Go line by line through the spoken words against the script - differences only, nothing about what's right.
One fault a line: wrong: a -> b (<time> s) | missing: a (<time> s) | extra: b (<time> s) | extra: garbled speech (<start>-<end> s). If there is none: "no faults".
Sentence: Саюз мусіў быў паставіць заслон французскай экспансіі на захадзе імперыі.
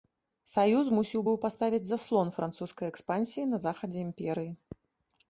no faults